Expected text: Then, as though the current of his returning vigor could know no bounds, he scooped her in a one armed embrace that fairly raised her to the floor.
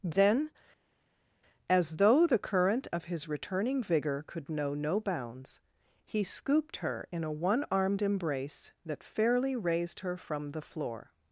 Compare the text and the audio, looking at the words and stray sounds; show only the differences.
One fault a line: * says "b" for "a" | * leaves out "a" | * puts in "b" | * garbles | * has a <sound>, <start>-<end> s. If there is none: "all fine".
* says "from" for "to"